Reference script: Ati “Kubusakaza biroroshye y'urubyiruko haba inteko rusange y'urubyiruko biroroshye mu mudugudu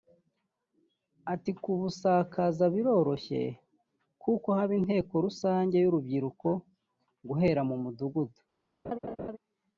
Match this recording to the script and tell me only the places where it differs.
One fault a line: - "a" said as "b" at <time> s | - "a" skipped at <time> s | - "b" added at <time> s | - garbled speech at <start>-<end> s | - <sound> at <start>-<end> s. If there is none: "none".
- "y'urubyiruko" said as "kuko" at 4.2 s
- "biroroshye" said as "guhera" at 7.3 s
- laugh at 8.8-9.4 s